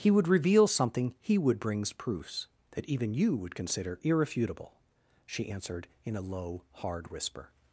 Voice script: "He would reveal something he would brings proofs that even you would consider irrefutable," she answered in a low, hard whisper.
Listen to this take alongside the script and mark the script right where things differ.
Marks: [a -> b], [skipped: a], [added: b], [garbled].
"He would reveal something he would brings proofs that even you would consider irrefutable," she answered in a low, hard whisper.